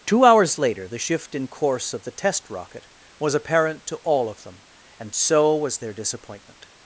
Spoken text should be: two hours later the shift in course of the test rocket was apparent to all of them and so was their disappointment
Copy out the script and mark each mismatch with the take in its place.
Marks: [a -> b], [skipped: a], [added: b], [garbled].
two hours later the shift in course of the test rocket was apparent to all of them and so was their disappointment